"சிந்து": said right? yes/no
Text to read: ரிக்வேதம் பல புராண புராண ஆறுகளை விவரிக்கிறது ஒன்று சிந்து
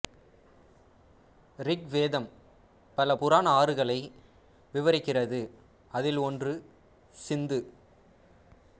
yes